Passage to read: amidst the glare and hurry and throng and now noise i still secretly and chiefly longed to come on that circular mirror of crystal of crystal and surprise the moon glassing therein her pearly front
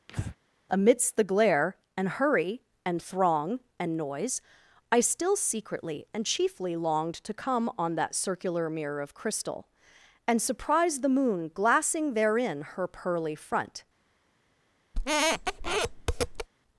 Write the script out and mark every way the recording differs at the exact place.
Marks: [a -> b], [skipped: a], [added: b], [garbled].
amidst the glare and hurry and throng and [skipped: now] noise i still secretly and chiefly longed to come on that circular mirror of crystal [skipped: of crystal] and surprise the moon glassing therein her pearly front